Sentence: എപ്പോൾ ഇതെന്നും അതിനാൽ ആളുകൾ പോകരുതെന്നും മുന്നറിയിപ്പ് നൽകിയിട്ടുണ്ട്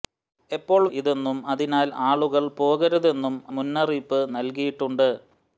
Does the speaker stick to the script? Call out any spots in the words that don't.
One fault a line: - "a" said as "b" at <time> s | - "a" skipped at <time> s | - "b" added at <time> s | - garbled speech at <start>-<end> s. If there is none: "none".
none